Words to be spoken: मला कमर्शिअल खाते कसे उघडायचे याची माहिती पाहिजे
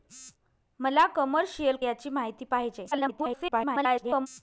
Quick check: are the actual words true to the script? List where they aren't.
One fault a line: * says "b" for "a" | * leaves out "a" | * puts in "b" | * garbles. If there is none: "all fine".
* leaves out "खाते कसे उघडायचे"
* garbles